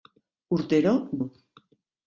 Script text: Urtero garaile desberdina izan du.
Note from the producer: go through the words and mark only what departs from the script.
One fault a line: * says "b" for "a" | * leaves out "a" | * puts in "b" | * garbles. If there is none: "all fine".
* leaves out "garaile desberdina izan"